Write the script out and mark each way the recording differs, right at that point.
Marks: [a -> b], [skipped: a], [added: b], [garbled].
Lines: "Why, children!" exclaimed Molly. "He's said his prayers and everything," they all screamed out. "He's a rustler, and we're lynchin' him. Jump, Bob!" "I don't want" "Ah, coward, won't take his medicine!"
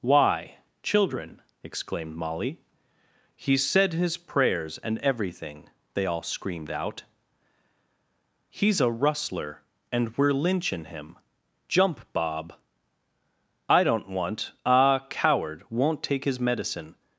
"Why, children!" exclaimed Molly. "He's said his prayers and everything," they all screamed out. "He's a rustler, and we're lynchin' him. Jump, Bob!" "I don't want" "Ah, coward, won't take his medicine!"